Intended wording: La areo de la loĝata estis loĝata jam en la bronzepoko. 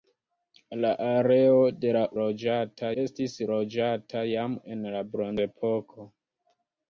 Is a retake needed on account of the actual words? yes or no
no